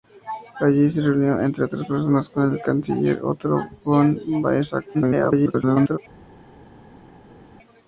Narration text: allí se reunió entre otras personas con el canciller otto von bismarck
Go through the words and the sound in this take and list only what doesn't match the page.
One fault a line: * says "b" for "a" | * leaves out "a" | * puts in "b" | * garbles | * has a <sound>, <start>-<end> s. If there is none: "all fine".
* garbles